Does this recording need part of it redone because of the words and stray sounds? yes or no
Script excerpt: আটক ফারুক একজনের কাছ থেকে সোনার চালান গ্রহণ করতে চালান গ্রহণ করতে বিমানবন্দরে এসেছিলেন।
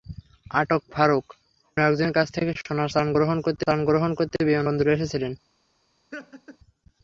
yes